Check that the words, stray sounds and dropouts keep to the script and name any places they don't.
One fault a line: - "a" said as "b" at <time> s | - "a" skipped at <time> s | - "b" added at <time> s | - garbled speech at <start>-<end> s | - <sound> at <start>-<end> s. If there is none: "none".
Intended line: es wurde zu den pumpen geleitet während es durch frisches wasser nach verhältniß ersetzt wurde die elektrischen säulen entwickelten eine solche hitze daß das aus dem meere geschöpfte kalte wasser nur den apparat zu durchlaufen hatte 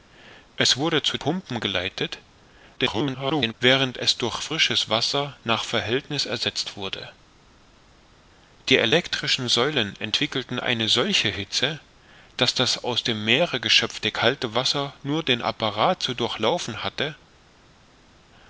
- "den" skipped at 1.1 s
- garbled speech at 2.8-3.5 s